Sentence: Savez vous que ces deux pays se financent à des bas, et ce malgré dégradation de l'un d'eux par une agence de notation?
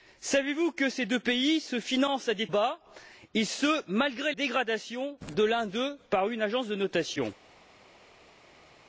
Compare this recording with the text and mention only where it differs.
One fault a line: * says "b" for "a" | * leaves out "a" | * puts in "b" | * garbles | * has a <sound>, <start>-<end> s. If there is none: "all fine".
all fine